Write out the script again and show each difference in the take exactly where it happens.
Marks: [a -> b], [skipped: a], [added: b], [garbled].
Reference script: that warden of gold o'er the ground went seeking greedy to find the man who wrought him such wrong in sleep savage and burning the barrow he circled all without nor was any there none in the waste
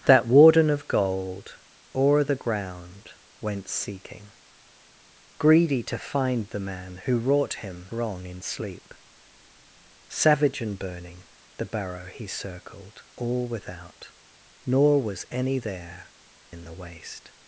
that warden of gold o'er the ground went seeking greedy to find the man who wrought him [skipped: such] wrong in sleep savage and burning the barrow he circled all without nor was any there [skipped: none] in the waste